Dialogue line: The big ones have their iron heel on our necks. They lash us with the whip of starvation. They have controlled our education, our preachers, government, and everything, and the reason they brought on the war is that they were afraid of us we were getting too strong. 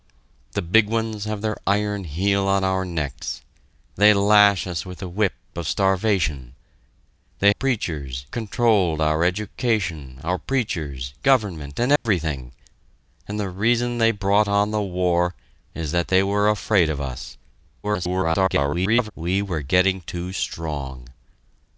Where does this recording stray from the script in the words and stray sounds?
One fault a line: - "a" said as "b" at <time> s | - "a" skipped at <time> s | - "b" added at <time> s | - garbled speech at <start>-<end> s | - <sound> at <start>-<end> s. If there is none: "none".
- "have" said as "preachers" at 7.5 s
- dropout at 12.0-12.1 s
- garbled speech at 17.8-19.1 s